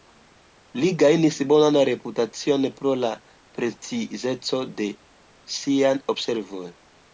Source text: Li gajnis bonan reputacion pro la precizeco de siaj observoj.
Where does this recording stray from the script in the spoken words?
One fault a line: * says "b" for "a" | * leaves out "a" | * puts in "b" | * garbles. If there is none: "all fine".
all fine